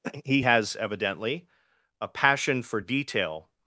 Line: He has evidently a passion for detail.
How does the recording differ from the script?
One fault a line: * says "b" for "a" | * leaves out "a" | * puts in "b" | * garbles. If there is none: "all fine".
all fine